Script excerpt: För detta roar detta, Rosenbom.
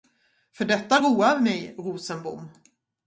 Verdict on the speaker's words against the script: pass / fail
fail